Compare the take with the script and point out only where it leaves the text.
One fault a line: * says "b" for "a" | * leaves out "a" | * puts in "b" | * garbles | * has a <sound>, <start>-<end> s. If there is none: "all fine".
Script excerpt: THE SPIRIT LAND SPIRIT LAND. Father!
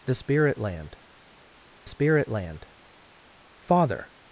all fine